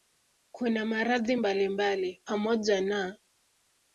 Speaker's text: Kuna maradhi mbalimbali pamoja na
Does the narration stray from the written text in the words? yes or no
no